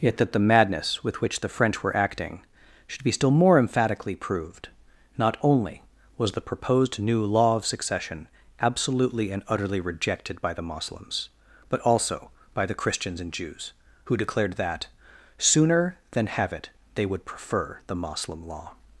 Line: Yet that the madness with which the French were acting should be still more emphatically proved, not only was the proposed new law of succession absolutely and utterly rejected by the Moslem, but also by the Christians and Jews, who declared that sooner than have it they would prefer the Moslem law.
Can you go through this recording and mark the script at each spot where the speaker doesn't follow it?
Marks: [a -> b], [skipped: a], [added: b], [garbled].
Yet that the madness with which the French were acting should be still more emphatically proved, not only was the proposed new law of succession absolutely and utterly rejected by the [Moslem, -> Moslems] but also by the Christians and Jews, who declared that sooner than have it they would prefer the Moslem law.